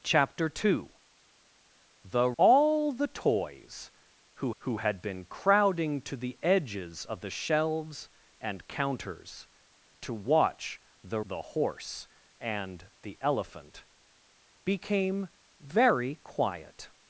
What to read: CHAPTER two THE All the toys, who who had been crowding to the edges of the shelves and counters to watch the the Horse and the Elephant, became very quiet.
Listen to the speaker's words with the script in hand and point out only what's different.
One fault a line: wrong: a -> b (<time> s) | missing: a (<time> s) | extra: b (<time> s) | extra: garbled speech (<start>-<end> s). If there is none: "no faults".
no faults